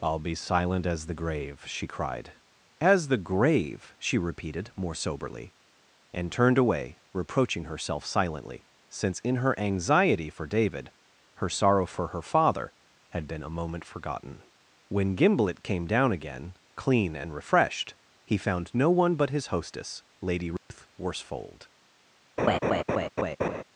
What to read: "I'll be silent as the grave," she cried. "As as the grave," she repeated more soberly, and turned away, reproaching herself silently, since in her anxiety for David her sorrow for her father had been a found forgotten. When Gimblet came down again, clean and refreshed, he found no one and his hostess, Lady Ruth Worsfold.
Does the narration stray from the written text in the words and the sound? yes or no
yes